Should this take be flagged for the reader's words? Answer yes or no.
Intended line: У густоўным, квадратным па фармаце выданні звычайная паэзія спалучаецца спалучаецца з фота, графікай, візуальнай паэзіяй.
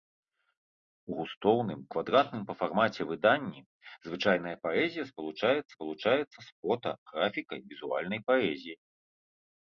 no